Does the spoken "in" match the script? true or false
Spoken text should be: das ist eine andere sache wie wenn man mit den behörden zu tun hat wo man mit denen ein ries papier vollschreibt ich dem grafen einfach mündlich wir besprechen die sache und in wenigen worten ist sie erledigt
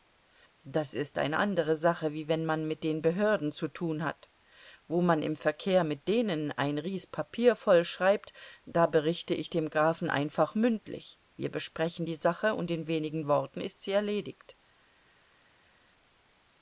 true